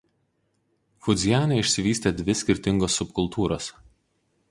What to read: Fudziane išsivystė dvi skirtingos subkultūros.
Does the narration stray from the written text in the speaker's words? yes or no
no